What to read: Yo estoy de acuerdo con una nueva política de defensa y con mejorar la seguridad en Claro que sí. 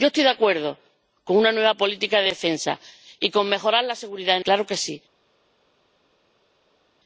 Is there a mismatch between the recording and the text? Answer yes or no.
no